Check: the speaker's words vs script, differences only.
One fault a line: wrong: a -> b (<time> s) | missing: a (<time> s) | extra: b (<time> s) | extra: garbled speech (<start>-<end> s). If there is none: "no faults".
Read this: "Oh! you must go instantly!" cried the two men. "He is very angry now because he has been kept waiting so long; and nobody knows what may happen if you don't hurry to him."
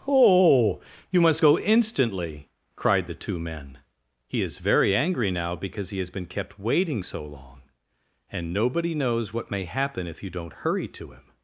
no faults